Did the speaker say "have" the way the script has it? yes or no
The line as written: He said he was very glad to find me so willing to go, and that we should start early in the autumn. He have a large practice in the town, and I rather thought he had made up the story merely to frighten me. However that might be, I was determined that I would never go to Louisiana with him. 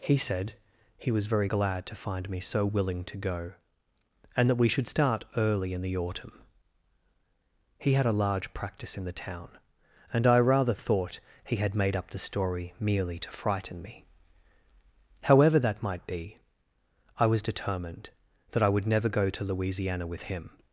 no